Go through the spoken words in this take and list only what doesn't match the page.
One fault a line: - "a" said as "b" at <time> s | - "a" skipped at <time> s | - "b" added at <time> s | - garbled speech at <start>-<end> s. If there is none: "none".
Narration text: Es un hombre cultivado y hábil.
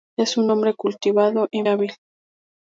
none